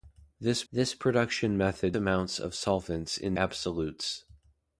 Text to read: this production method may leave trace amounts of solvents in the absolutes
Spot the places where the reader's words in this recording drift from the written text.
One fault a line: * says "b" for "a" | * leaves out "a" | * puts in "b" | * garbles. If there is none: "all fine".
* puts in "this"
* leaves out "may leave trace"
* leaves out "the"